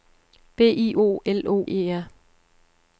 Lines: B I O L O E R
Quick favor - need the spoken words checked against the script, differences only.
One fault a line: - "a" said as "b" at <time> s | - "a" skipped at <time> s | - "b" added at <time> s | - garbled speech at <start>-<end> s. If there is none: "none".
none